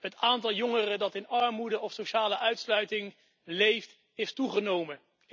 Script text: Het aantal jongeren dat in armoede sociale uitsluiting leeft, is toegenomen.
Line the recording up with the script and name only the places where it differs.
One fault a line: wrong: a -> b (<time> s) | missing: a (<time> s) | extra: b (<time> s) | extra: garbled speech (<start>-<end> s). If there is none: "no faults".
extra: of (1.8 s)